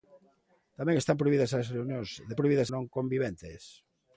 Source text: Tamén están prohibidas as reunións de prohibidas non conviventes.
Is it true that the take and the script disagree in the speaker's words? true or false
false